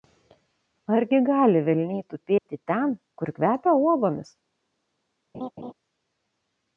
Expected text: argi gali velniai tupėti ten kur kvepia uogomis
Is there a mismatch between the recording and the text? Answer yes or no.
no